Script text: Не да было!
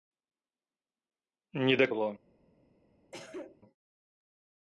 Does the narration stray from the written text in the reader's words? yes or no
no